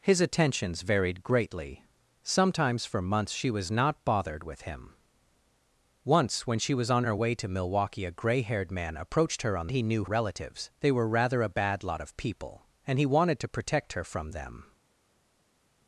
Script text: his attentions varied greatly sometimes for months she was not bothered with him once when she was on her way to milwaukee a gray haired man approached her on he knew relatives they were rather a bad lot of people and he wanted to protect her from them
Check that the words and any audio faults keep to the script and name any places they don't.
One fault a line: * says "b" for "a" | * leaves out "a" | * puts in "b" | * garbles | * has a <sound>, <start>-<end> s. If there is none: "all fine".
all fine